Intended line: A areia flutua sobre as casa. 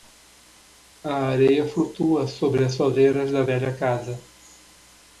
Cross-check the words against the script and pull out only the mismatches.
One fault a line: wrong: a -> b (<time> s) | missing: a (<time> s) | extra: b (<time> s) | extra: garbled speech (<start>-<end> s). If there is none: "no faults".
extra: soleiras da velha (2.7 s)